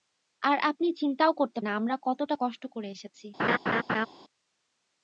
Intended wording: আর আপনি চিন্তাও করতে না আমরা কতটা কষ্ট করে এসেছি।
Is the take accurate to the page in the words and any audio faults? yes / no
no